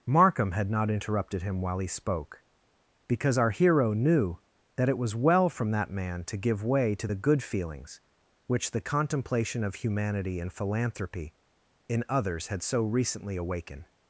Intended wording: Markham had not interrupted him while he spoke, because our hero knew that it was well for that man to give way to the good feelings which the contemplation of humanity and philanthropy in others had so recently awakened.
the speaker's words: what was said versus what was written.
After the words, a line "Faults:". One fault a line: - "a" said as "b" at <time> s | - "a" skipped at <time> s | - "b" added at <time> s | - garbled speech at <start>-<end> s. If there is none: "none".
Markham had not interrupted him while he spoke, because our hero knew that it was well from that man to give way to the good feelings which the contemplation of humanity and philanthropy in others had so recently awakened.
Faults:
- "for" said as "from" at 5.5 s